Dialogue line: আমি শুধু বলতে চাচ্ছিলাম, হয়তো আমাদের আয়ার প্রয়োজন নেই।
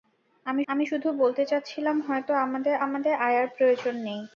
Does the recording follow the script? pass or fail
fail